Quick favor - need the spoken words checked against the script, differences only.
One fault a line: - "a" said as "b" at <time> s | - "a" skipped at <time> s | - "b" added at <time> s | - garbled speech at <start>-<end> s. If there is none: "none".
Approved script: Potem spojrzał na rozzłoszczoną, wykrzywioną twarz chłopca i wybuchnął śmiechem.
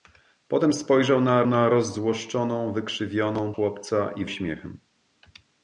- "na" added at 1.5 s
- "twarz" skipped at 3.5 s
- "wybuchnął" skipped at 4.2 s